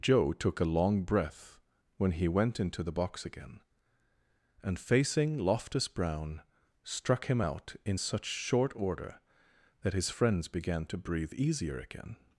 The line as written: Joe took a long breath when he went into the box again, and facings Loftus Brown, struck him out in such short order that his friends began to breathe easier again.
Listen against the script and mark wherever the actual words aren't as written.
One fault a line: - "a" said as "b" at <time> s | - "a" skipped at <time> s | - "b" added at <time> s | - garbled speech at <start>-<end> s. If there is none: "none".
- "facings" said as "facing" at 4.8 s